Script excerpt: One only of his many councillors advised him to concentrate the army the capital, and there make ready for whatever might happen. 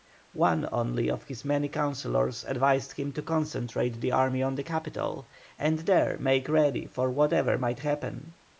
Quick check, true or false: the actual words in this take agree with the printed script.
false